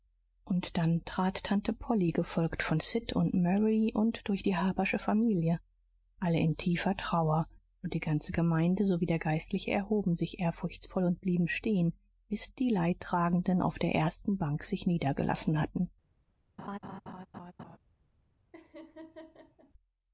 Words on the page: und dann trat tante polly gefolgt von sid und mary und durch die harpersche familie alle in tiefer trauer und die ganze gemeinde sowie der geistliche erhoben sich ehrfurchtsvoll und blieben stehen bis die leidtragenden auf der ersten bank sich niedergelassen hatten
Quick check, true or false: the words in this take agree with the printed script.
true